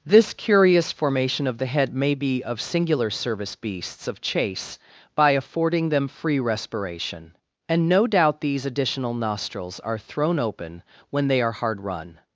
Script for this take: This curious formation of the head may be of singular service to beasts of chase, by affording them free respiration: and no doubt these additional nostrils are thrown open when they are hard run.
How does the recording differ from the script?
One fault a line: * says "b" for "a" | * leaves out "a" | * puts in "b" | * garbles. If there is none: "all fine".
* leaves out "to"